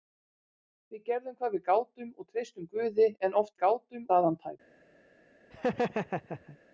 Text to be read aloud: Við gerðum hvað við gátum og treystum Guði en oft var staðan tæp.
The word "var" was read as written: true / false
false